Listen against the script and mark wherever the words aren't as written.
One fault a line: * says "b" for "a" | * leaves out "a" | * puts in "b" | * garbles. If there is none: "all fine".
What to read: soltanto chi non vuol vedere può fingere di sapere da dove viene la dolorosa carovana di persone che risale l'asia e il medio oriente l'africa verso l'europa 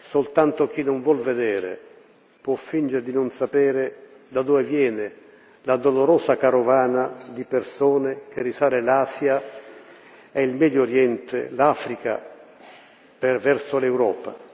* puts in "non"